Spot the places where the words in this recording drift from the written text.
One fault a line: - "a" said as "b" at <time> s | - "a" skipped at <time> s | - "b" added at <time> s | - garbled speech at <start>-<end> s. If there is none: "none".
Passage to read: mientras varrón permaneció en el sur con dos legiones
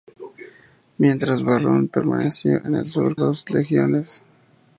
- "con" skipped at 3.1 s